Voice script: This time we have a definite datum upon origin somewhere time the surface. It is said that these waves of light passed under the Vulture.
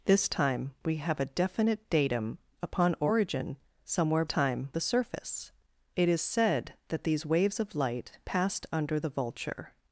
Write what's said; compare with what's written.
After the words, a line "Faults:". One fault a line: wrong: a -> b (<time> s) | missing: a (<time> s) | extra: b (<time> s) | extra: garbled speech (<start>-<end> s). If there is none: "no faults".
This time we have a definite datum upon origin somewhere time the surface. It is said that these waves of light passed under the Vulture.
Faults:
no faults